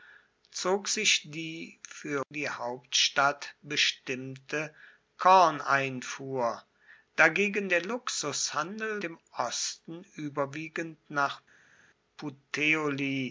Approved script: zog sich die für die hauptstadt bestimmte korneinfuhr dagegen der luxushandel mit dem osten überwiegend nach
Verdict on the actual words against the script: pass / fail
fail